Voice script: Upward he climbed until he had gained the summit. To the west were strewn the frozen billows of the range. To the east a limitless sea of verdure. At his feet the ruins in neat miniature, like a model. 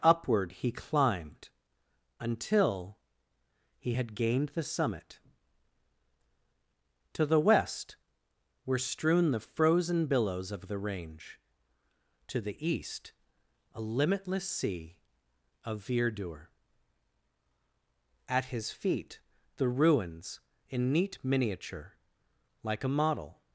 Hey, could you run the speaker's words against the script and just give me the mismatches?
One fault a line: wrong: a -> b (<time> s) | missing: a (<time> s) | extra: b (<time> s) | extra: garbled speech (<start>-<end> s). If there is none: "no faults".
no faults